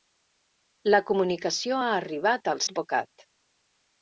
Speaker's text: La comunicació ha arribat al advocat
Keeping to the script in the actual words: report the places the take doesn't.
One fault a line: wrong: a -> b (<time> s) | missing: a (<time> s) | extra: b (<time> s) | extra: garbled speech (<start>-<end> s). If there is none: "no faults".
no faults